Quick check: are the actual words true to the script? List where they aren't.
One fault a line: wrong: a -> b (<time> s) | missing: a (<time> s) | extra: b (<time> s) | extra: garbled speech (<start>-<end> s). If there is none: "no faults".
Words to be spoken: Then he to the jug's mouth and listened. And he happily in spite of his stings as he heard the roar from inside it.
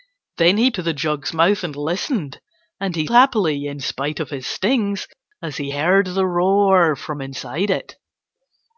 no faults